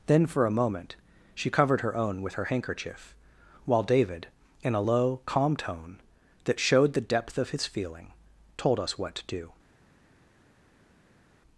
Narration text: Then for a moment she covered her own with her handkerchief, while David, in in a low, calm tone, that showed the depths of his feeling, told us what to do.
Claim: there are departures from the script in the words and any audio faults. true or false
true